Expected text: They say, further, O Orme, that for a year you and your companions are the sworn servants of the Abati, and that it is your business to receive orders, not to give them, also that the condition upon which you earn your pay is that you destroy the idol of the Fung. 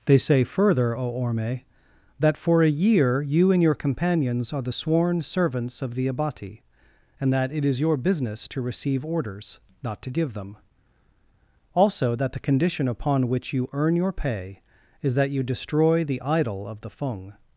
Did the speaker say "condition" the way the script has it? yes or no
yes